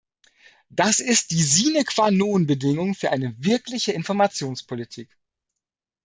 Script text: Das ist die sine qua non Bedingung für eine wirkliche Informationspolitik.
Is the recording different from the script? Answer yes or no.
no